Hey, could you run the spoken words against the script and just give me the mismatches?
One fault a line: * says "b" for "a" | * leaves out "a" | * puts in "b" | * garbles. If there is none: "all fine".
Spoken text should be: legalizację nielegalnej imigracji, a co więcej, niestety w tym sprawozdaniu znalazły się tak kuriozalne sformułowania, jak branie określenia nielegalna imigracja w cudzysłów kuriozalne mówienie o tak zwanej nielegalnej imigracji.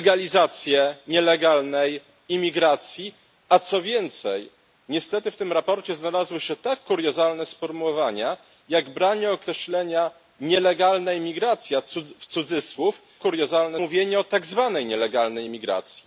all fine